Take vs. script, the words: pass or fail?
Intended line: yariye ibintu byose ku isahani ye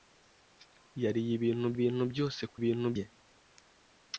fail